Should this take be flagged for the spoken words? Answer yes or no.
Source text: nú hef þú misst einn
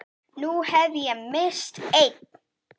yes